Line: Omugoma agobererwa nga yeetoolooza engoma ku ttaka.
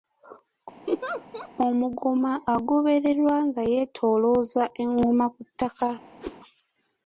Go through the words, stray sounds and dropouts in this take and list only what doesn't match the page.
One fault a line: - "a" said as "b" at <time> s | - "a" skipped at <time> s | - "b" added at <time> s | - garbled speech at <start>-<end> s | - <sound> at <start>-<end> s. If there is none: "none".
- laugh at 0.9-1.5 s
- whoosh at 6.2-6.4 s